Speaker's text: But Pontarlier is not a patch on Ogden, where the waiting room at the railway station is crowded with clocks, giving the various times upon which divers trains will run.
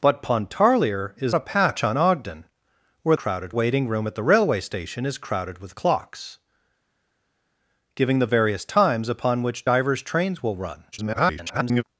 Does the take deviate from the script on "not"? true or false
true